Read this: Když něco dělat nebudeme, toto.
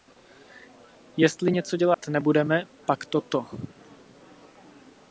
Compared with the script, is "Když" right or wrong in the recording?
wrong